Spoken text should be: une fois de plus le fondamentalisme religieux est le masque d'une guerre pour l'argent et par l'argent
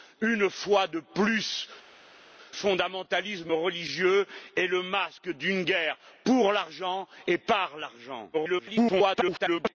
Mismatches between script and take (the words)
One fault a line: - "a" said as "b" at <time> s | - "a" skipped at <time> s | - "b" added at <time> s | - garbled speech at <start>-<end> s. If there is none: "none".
- "le" skipped at 1.7 s
- garbled speech at 8.3-9.7 s